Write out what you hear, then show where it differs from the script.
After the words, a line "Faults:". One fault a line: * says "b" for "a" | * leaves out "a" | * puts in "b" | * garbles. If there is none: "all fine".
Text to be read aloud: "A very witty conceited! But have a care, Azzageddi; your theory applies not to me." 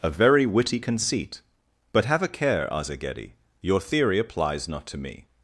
"A very witty conceit! But have a care, Azzageddi; your theory applies not to me."
Faults:
* says "conceit" for "conceited"